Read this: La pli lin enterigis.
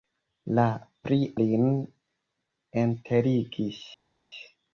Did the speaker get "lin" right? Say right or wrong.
right